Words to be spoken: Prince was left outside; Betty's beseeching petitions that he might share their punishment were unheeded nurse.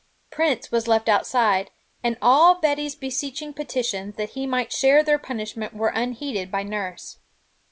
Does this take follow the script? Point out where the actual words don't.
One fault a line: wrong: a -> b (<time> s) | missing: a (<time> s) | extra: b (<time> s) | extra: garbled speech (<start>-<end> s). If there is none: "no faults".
extra: and all (2.0 s)
extra: by (6.5 s)